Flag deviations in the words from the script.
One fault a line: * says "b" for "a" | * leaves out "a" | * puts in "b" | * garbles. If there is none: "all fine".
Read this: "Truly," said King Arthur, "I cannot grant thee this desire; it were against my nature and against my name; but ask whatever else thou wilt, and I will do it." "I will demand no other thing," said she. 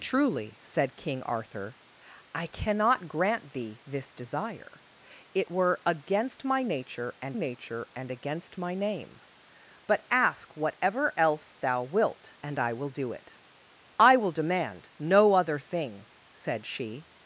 * puts in "nature and"